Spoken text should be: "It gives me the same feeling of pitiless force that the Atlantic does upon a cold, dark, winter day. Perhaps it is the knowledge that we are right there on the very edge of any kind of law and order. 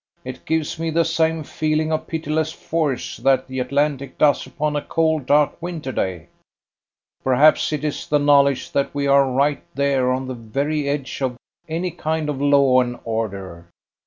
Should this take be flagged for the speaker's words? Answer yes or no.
no